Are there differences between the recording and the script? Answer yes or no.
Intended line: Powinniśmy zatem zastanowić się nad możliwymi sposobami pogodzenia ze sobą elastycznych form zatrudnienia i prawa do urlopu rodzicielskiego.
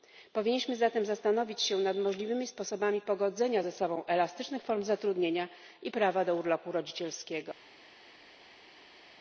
no